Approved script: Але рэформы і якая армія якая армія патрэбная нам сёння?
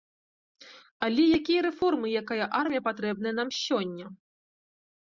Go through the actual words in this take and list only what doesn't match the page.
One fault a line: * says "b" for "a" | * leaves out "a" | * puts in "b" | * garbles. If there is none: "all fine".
* puts in "якія"
* leaves out "якая армія"